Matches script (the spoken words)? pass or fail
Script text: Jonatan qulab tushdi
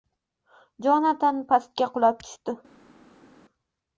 fail